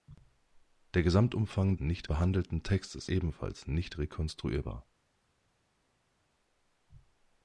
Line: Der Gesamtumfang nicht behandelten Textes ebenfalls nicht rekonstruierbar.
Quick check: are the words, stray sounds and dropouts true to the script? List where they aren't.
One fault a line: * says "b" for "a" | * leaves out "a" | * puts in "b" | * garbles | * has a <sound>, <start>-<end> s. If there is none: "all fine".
all fine